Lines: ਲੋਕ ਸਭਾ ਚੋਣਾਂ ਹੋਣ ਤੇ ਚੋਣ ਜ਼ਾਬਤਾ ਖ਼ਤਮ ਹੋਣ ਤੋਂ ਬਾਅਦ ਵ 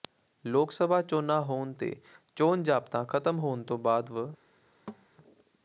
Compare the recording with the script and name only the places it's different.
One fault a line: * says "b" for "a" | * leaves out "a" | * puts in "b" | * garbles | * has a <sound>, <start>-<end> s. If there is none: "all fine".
* has a thud, 4.9-5.1 s